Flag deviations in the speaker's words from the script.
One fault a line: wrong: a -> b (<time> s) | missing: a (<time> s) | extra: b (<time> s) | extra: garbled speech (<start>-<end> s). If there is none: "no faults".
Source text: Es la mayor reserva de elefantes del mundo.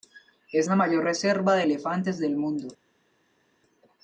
no faults